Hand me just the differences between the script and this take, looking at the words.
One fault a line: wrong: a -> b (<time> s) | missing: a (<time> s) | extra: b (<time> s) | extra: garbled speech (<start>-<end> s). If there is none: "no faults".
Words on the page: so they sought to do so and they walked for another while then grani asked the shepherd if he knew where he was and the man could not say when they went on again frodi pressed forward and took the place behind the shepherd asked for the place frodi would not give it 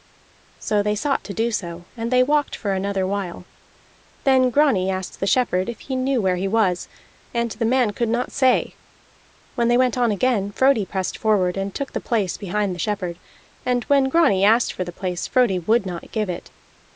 extra: and when grani (13.6 s)